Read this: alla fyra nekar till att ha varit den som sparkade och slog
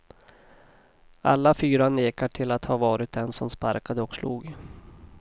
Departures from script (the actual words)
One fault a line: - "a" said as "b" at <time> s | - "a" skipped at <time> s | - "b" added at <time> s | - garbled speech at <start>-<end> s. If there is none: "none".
none